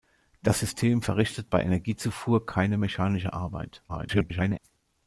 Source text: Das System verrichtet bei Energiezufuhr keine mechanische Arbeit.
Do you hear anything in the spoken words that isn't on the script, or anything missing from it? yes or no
yes